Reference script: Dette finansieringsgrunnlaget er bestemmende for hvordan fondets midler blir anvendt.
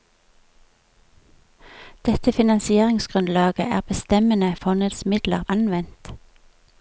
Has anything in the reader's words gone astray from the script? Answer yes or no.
yes